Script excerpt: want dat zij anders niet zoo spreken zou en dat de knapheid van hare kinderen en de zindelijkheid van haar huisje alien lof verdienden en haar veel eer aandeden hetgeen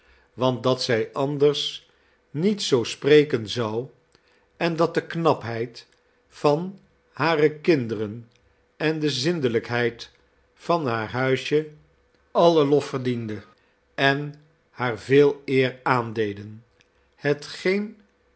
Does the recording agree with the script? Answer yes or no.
yes